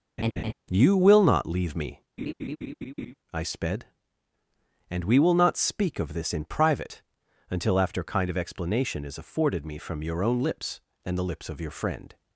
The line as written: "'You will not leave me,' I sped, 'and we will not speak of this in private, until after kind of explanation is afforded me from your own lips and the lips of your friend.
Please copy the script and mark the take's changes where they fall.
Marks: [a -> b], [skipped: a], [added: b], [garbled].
"'You will not leave me,' I sped, 'and we will not speak of this in private, until after kind of explanation is afforded me from your own lips and the lips of your friend.